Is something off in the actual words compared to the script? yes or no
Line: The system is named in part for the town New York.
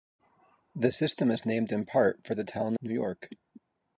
no